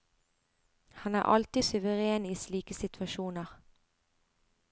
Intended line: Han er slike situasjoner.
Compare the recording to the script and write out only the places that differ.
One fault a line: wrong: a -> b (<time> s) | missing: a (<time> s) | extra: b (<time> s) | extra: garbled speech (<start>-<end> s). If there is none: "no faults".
extra: alltid suveren i (1.2 s)